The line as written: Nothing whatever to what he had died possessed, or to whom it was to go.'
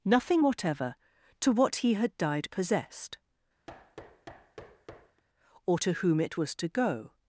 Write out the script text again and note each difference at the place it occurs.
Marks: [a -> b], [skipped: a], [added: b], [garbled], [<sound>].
Nothing whatever to what he had died possessed, [thud] or to whom it was to go.'